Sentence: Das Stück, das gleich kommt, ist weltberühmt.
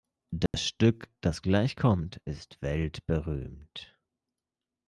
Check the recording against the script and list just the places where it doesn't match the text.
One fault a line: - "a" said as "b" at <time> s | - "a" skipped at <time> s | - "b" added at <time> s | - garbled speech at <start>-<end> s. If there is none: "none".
none